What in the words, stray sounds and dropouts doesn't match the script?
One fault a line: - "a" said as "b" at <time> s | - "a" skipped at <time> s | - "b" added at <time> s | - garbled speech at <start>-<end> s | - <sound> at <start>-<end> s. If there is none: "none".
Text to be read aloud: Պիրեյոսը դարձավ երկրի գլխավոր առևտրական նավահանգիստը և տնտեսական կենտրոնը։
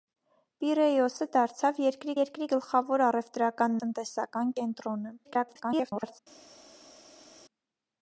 - "երկրի" added at 2.2 s
- "նավահանգիստը և" skipped at 3.8 s
- garbled speech at 5.2-6.2 s